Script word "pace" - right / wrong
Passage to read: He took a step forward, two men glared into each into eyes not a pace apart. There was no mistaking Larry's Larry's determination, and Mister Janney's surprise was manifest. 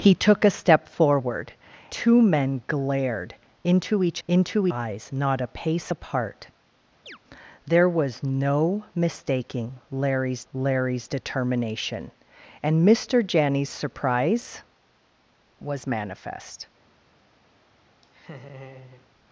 right